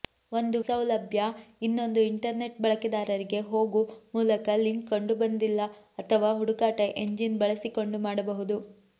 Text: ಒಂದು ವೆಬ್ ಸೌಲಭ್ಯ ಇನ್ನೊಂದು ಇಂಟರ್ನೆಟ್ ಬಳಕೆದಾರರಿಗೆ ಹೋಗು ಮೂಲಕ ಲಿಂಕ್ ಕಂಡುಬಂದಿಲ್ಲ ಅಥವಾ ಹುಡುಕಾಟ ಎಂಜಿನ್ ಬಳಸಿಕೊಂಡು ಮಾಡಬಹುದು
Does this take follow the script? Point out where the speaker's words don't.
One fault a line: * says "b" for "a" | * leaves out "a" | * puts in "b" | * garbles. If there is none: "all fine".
* leaves out "ವೆಬ್"